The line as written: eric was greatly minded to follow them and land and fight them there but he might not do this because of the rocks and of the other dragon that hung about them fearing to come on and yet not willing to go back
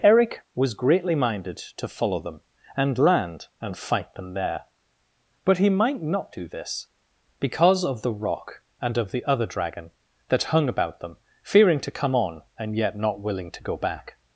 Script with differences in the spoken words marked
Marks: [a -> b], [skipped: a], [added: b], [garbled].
eric was greatly minded to follow them and land and fight them there but he might not do this because of the [rocks -> rock] and of the other dragon that hung about them fearing to come on and yet not willing to go back